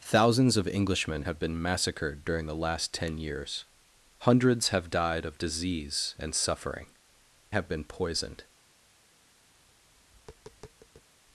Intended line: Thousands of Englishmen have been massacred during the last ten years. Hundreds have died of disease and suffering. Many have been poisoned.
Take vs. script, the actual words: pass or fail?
fail